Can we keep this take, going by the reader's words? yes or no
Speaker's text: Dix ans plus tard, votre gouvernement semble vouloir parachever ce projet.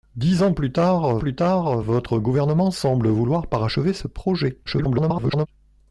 no